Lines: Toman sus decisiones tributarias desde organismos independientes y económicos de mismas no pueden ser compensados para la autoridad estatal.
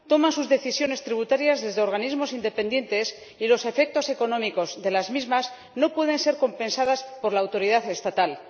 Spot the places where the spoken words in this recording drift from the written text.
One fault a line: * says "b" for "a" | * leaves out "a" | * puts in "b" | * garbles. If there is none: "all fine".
* puts in "los efectos"
* puts in "las"
* says "por" for "para"